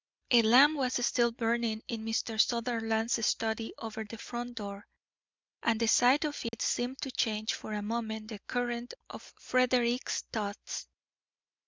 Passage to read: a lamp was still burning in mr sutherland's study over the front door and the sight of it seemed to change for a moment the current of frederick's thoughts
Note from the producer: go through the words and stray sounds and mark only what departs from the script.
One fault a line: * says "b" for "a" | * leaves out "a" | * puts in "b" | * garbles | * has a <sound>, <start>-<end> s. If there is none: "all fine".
* has a dropout, 6.5-6.5 s